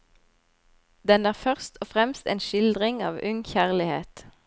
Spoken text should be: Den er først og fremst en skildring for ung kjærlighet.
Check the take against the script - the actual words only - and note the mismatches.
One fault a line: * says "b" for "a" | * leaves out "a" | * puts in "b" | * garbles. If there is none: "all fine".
* says "av" for "for"